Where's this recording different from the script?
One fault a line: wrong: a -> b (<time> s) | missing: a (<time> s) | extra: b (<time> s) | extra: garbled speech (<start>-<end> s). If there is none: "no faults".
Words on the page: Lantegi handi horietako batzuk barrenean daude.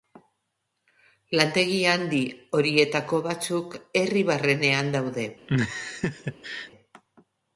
extra: herri (4.0 s)